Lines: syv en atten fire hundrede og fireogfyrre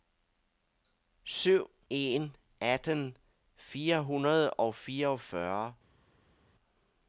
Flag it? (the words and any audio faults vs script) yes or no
no